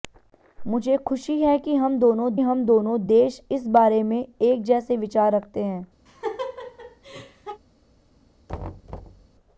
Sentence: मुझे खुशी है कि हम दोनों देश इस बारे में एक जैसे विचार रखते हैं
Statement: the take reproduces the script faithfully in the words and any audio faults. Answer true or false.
false